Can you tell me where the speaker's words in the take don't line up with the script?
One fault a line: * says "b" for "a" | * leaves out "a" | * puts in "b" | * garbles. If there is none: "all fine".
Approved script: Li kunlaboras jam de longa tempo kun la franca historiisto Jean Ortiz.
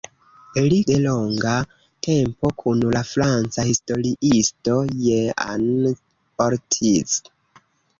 * leaves out "kunlaboras jam"